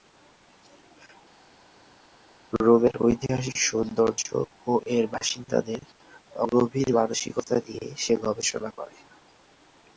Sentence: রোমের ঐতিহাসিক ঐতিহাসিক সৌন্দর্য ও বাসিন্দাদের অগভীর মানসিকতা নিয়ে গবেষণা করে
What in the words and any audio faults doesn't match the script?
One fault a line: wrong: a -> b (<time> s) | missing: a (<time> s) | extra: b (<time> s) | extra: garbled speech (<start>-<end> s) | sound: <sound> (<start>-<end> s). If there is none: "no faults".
missing: ঐতিহাসিক (3.6 s)
extra: এর (5.0 s)
extra: সে (8.0 s)